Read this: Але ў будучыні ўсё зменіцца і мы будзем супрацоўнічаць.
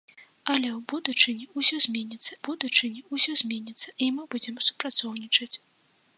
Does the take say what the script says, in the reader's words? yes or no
no